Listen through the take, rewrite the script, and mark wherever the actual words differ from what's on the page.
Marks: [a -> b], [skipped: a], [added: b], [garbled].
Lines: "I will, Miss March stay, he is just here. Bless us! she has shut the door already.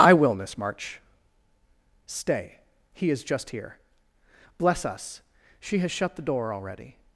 "I will, Miss March stay, he is just here. Bless us! she has shut the door already.